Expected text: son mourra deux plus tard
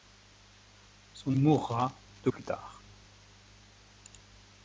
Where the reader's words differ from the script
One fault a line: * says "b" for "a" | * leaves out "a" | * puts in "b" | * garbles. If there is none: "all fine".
all fine